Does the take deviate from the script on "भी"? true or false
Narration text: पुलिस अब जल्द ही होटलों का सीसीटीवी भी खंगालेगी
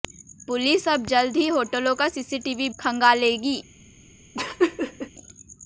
true